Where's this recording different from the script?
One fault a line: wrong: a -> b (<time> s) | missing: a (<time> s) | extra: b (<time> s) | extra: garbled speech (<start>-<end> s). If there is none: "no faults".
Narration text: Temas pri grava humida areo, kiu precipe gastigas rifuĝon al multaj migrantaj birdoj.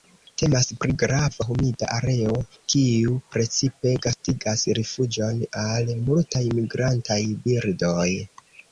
no faults